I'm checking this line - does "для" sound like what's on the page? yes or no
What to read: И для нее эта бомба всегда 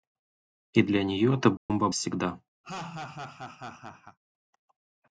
yes